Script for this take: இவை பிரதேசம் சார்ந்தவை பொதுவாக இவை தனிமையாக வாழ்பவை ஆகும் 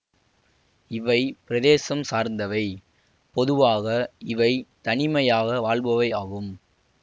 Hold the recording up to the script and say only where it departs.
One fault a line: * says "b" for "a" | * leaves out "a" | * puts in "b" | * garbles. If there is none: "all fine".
all fine